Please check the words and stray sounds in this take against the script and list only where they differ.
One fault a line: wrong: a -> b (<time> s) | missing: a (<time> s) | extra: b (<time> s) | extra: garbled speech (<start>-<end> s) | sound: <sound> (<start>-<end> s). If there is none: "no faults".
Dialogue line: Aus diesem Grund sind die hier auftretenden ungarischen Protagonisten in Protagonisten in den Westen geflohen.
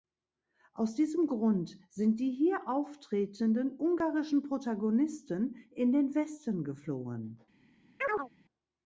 missing: Protagonisten in (5.9 s)
sound: chirp (8.0-8.3 s)